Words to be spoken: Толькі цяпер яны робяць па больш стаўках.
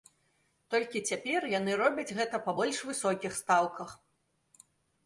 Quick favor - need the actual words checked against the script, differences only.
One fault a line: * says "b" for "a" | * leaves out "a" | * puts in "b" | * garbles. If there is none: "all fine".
* puts in "гэта"
* puts in "высокіх"